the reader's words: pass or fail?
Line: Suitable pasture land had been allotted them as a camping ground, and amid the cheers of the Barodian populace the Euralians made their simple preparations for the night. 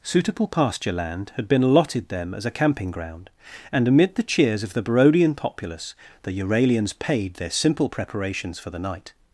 fail